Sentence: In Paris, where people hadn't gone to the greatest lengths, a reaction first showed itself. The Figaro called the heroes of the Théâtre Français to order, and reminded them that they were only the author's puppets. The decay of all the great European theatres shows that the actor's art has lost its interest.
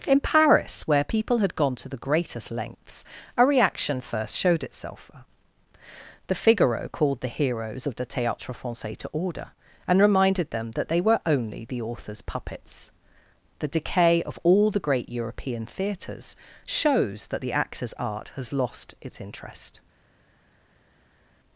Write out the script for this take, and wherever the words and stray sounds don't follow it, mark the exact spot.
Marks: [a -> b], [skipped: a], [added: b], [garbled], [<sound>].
In Paris, where people [hadn't -> had] gone to the greatest lengths, a reaction first showed itself. The Figaro called the heroes of the Théâtre Français to order, and reminded them that they were only the author's puppets. The decay of all the great European theatres shows that the actor's art has lost its interest.